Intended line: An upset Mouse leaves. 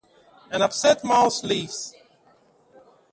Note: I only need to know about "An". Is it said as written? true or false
true